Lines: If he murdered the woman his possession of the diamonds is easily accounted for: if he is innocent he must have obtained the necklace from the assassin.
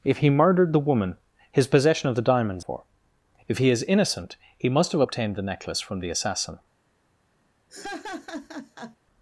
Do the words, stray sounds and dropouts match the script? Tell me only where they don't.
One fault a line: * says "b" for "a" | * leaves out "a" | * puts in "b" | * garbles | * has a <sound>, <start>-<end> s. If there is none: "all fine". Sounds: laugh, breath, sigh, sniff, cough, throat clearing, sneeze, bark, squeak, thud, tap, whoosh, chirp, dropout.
* leaves out "is easily accounted"
* has a laugh, 7.7-9.0 s